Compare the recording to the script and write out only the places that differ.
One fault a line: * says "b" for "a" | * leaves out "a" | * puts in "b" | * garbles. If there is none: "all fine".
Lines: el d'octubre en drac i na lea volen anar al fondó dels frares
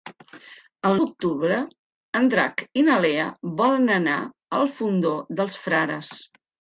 all fine